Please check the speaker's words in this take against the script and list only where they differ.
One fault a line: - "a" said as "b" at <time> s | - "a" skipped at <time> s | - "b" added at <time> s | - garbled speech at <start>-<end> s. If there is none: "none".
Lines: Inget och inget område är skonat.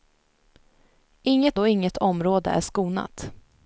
none